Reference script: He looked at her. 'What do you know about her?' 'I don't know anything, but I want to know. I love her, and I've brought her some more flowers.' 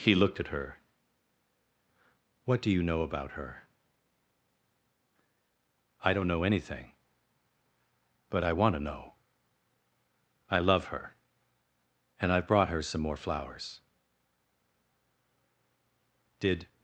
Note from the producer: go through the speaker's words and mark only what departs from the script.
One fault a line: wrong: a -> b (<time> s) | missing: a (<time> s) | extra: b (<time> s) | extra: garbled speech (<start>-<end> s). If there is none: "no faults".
extra: Did (16.4 s)